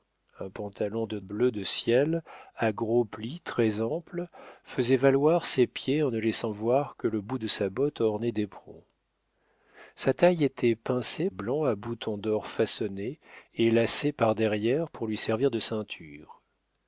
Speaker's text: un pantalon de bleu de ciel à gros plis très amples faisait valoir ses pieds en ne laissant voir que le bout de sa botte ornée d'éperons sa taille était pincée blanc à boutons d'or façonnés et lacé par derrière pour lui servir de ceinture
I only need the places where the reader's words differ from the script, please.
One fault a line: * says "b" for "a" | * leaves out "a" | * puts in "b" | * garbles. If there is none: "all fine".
all fine